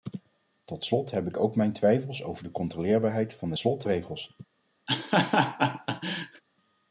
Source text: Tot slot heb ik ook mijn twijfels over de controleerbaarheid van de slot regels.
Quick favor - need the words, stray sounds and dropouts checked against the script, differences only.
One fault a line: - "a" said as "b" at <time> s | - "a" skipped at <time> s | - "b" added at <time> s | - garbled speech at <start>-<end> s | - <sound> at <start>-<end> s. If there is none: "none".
- laugh at 4.9-6.4 s